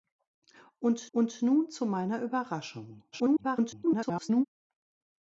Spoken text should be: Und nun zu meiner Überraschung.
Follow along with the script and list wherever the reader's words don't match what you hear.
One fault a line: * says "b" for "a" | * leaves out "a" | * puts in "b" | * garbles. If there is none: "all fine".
* puts in "und"
* garbles